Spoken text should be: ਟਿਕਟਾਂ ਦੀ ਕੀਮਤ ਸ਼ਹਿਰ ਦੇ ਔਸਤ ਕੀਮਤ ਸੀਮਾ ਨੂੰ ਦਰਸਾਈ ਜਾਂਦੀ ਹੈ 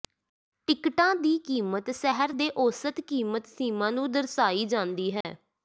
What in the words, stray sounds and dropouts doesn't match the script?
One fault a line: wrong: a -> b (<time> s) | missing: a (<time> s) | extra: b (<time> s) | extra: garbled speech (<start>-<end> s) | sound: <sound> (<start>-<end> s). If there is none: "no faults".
sound: dropout (5.2-5.2 s)